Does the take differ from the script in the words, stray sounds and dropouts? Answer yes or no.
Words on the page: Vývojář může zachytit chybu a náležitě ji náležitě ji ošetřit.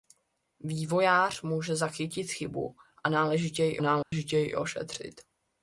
yes